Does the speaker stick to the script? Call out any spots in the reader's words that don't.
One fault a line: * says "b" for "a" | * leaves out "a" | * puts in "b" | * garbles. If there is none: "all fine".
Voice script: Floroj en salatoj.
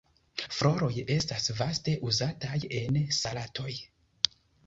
* puts in "estas vaste uzataj"